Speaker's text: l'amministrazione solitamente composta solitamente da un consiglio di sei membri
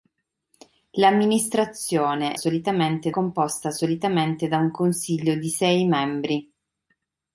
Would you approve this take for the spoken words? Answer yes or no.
yes